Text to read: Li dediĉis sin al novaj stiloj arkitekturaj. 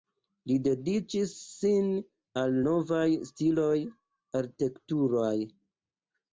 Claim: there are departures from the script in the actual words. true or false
false